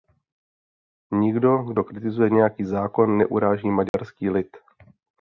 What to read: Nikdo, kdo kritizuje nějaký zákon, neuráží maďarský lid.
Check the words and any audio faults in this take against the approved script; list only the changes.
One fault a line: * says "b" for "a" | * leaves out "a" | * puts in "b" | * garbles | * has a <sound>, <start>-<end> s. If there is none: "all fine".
* has a dropout, 3.9-3.9 s